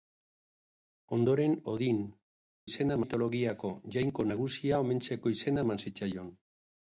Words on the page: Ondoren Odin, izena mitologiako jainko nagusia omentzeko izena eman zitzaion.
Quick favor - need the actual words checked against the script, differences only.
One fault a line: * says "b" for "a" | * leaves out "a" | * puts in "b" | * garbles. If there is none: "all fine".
all fine